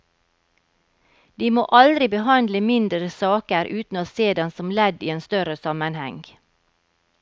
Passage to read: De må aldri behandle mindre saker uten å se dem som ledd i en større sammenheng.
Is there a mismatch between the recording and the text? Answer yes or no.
no